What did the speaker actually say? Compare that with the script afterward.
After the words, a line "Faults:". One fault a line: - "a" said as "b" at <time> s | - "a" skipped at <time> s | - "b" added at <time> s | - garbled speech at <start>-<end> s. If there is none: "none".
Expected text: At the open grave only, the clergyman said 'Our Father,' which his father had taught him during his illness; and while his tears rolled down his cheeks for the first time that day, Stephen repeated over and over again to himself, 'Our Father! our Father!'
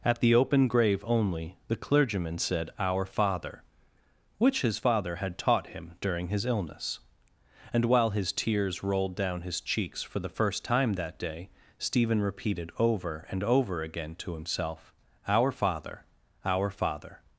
At the open grave only, the clergyman said 'Our Father,' which his father had taught him during his illness; and while his tears rolled down his cheeks for the first time that day, Stephen repeated over and over again to himself, 'Our Father! our Father!'
Faults:
none